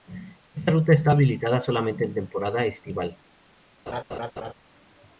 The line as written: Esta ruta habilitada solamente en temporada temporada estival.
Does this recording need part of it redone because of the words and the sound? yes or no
yes